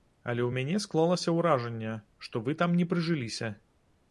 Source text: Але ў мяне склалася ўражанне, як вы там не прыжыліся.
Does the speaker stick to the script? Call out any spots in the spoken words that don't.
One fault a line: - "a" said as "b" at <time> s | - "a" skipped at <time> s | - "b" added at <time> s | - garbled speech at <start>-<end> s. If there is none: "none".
- "як" said as "што" at 2.3 s